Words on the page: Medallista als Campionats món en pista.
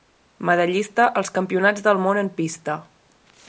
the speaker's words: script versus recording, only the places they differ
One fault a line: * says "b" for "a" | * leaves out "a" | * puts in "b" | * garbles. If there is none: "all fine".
* puts in "del"